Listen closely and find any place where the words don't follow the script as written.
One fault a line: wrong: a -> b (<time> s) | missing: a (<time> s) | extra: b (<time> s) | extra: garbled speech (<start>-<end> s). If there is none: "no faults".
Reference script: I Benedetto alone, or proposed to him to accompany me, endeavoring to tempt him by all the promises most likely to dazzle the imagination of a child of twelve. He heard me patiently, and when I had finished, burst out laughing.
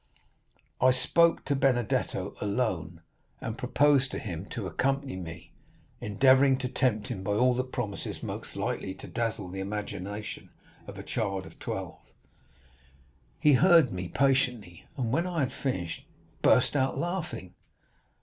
extra: spoke to (0.9 s)
wrong: or -> and (3.4 s)